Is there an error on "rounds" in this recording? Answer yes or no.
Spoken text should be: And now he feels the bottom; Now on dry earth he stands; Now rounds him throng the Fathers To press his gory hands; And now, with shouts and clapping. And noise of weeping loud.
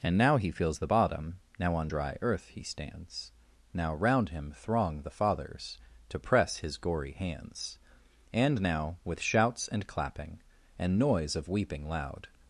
yes